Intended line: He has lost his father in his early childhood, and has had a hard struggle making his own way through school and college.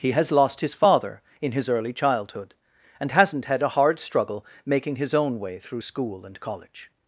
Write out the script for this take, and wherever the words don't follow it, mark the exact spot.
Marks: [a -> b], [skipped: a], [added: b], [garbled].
He has lost his father in his early childhood, and [has -> hasn't] had a hard struggle making his own way through school and college.